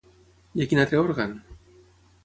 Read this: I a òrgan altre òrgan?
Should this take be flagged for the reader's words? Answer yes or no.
yes